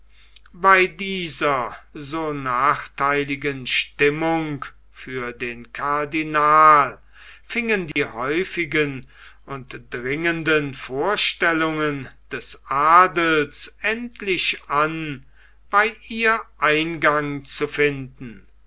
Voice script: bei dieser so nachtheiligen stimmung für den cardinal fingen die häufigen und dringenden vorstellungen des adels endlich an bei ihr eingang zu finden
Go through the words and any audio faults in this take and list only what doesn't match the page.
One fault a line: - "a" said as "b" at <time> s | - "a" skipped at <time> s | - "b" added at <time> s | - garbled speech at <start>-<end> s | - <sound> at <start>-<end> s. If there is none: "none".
- dropout at 7.9-8.0 s